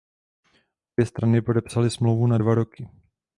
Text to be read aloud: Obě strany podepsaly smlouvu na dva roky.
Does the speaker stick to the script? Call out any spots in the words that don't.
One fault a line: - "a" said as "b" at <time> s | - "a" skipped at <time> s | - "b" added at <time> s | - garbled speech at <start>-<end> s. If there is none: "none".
none